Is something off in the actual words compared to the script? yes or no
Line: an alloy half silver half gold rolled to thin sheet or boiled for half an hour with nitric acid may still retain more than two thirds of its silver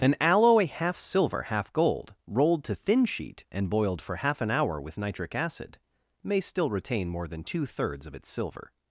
yes